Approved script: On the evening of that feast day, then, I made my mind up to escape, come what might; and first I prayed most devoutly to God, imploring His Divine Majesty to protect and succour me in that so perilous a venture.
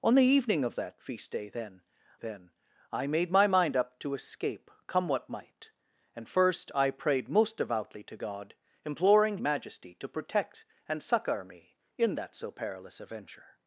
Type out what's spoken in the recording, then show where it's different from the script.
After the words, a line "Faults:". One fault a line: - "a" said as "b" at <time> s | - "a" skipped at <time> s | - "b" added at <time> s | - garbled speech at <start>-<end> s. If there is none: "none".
On the evening of that feast day, then then, I made my mind up to escape, come what might; and first I prayed most devoutly to God, imploring Majesty to protect and succour me in that so perilous a venture.
Faults:
- "then" added at 2.1 s
- "His Divine" skipped at 9.4 s